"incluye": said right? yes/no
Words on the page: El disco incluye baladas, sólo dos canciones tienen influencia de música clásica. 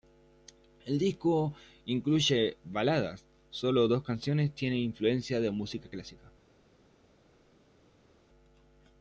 yes